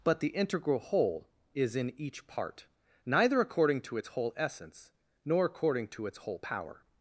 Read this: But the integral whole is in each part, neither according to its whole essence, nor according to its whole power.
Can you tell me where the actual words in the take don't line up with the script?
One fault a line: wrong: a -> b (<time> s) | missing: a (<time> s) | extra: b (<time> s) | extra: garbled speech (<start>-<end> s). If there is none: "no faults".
no faults